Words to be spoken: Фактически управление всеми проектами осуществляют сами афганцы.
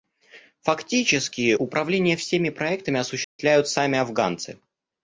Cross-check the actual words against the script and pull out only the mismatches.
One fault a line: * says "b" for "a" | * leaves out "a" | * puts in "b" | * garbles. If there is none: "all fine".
all fine